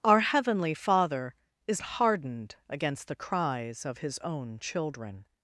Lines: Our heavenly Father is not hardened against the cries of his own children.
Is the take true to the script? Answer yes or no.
no